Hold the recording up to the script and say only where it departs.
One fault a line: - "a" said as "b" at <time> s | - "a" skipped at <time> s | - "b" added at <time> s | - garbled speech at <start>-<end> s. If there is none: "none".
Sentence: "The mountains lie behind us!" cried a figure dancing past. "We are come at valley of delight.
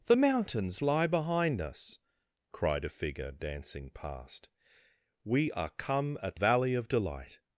none